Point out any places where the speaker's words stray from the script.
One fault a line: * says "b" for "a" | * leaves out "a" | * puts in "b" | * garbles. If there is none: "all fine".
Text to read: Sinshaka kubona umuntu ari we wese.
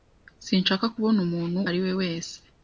all fine